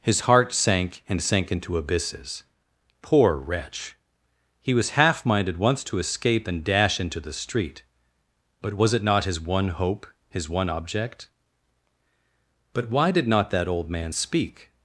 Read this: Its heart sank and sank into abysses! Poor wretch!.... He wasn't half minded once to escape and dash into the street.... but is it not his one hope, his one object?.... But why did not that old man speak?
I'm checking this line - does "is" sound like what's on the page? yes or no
no